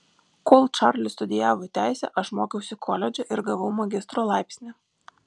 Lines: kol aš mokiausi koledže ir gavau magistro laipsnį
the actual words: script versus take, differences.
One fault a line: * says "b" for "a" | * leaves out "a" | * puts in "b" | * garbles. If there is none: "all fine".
* puts in "čarlis studijavo teisę"